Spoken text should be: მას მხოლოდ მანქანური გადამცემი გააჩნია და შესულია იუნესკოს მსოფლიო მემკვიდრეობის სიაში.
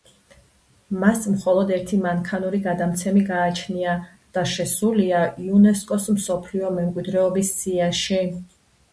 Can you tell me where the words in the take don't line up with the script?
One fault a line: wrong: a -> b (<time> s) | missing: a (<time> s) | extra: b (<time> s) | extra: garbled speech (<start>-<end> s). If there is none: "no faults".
extra: ერთი (1.7 s)